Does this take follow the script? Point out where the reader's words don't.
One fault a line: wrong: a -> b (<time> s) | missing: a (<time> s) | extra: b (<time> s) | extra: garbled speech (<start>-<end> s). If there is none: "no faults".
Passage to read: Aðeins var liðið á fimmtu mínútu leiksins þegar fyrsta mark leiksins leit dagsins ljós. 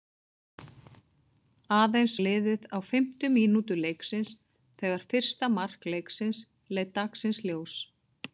missing: var (2.1 s)